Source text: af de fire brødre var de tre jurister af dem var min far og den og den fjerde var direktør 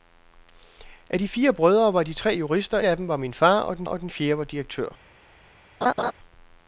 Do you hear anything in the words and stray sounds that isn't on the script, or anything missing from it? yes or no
yes